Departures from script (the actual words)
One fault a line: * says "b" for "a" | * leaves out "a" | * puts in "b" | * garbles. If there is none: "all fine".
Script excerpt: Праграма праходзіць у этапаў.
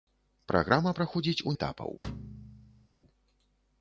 all fine